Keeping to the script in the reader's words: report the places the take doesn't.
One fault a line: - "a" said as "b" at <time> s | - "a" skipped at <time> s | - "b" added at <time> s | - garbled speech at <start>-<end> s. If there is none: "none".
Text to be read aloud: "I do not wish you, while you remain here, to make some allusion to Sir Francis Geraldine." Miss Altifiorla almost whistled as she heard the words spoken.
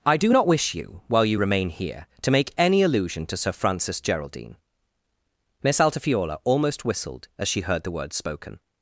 - "some" said as "any" at 2.6 s